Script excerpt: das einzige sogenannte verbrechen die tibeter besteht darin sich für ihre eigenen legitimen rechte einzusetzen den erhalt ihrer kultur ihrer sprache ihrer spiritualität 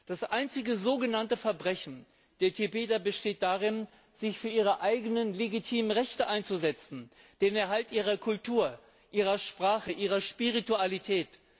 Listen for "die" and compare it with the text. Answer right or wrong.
wrong